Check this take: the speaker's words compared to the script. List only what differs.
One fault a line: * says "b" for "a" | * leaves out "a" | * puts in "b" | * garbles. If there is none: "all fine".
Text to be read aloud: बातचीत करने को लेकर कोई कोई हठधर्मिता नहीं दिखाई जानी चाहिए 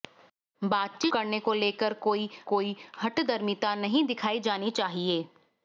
all fine